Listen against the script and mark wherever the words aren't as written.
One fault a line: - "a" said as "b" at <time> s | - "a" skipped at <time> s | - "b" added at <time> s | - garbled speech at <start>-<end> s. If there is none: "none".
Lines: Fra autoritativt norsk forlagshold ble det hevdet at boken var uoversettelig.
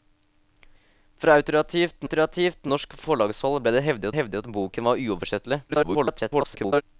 - "autoritativt" added at 2.1 s
- "hevdet" added at 4.2 s
- garbled speech at 5.7-6.8 s